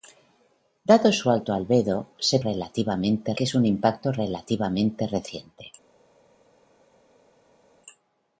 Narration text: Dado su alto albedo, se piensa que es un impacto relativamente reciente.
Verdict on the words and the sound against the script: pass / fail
fail